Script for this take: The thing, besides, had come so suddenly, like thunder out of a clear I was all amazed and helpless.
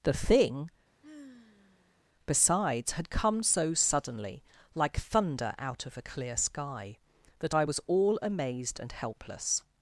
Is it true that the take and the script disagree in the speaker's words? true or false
true